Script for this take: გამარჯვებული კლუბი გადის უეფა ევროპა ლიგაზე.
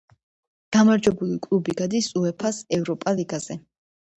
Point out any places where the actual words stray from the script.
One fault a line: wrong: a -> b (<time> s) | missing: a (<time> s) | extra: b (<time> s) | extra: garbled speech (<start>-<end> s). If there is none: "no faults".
extra: ს (2.6 s)